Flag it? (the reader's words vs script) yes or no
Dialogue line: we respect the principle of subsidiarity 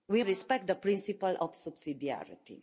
no